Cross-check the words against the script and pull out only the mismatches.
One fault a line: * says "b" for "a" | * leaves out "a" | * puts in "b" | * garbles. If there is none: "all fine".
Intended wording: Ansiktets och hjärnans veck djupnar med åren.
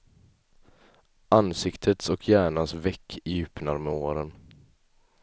all fine